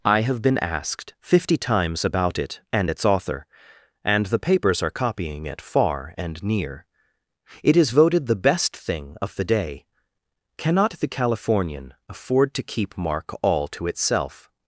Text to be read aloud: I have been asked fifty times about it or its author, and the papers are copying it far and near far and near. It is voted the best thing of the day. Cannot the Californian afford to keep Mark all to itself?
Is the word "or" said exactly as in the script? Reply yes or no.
no